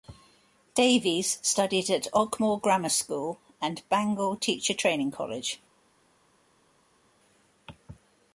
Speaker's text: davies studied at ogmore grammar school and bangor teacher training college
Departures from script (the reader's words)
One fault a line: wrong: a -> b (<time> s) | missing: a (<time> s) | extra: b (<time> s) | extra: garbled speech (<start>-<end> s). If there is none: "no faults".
no faults